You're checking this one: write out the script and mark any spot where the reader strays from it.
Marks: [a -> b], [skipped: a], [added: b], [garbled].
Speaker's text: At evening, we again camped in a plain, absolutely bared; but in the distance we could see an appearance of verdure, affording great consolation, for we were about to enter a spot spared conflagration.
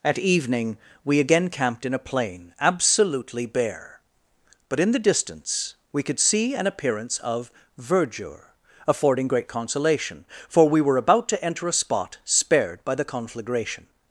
At evening, we again camped in a plain, absolutely [bared; -> bare] but in the distance we could see an appearance of verdure, affording great consolation, for we were about to enter a spot spared [added: by the] conflagration.